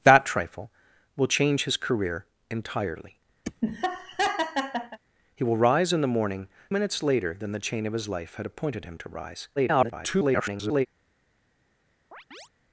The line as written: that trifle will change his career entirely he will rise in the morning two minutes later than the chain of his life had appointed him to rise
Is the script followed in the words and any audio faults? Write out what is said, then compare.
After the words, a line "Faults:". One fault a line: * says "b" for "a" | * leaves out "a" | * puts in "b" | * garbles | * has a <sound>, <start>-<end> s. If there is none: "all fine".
that trifle will change his career entirely he will rise in the morning minutes later than the chain of his life had appointed him to rise [garbled]
Faults:
* has a laugh, 3.4-5.0 s
* leaves out "two"
* garbles
* has a chirp, 12.1-12.5 s